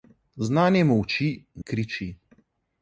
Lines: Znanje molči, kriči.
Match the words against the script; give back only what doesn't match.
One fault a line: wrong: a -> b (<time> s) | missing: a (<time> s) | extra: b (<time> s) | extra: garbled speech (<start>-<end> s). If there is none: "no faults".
no faults